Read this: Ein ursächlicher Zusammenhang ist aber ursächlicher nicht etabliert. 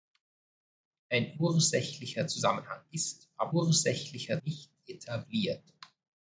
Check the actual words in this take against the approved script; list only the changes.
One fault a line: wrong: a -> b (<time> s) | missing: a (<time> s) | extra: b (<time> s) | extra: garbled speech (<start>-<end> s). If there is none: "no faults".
no faults